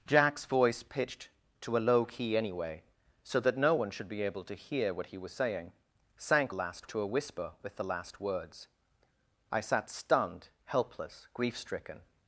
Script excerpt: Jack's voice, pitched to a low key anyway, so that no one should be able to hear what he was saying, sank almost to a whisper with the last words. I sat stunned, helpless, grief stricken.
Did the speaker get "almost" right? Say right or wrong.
wrong